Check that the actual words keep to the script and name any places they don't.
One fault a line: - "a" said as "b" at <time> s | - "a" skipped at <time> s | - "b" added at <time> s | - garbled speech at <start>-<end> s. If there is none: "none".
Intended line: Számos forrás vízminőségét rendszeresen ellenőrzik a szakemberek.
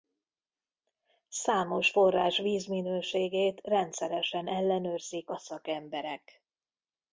none